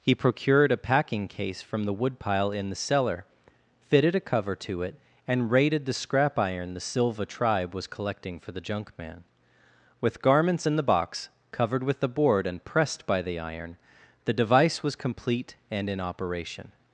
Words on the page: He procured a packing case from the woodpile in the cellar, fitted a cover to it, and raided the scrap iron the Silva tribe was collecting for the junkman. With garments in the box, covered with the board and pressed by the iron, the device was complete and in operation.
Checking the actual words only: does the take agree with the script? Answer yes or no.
yes